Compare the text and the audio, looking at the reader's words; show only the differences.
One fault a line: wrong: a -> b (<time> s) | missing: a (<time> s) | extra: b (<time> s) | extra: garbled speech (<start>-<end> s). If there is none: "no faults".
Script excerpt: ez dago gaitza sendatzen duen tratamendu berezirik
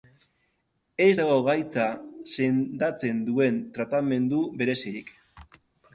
no faults